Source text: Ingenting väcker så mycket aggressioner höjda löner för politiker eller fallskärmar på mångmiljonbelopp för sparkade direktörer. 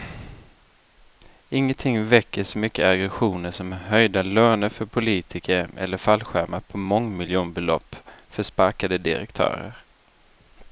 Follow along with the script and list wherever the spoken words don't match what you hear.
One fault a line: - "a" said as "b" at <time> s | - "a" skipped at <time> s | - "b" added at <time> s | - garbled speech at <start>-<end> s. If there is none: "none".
- "som" added at 3.5 s